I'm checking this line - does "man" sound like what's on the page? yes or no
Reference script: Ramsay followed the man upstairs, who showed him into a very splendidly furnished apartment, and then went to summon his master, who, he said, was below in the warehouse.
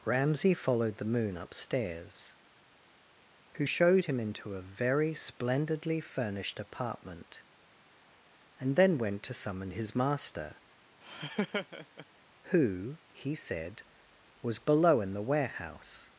no